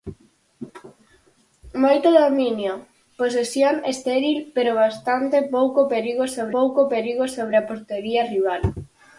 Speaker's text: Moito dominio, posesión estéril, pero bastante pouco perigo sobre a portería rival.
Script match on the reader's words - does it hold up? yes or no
no